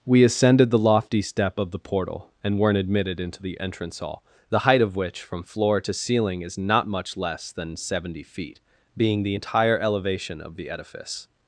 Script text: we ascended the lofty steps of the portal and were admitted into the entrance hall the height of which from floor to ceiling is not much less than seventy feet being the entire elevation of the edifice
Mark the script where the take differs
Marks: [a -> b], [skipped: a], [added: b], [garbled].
we ascended the lofty [steps -> step] of the portal and [were -> weren't] admitted into the entrance hall the height of which from floor to ceiling is not much less than seventy feet being the entire elevation of the edifice